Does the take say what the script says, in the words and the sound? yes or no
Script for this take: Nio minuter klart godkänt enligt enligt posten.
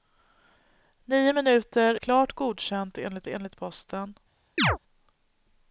no